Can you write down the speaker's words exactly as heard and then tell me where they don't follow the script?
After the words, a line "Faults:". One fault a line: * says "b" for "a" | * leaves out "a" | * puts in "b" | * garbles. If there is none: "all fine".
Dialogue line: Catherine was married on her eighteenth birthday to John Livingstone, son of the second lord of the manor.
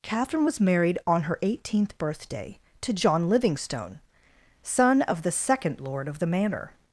Catherine was married on her eighteenth birthday to John Livingstone, son of the second lord of the manor.
Faults:
all fine